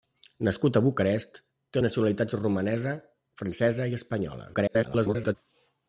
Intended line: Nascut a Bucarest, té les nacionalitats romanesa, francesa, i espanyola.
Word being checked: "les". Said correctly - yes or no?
no